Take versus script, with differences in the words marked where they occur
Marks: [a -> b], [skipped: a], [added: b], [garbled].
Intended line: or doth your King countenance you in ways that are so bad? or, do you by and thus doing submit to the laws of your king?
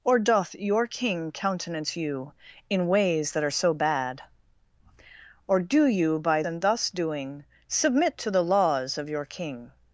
or doth your King countenance you in ways that are so bad? or, do you by and thus doing submit to the laws of your king?